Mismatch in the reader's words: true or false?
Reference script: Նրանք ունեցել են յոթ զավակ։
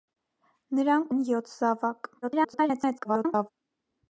true